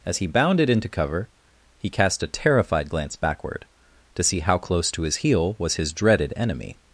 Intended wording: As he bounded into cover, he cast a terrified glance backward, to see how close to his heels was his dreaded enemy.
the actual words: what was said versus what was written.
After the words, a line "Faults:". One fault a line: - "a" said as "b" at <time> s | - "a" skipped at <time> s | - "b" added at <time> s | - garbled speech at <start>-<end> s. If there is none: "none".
As he bounded into cover, he cast a terrified glance backward, to see how close to his heel was his dreaded enemy.
Faults:
- "heels" said as "heel" at 5.2 s